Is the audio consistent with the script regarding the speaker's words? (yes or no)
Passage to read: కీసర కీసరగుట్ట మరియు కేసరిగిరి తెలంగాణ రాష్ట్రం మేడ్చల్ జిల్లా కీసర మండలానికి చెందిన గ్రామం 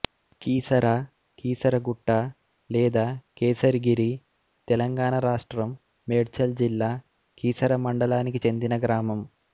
no